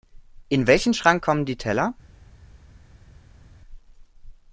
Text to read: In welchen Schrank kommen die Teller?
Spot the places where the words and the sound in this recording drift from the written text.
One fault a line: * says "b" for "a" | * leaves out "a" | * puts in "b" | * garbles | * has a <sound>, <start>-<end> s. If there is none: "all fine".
all fine